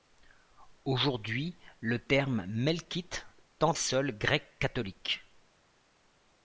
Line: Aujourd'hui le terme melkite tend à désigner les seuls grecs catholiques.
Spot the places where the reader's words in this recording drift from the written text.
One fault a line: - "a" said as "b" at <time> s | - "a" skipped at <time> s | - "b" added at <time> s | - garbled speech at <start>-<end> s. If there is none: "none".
- "à désigner les" skipped at 3.7 s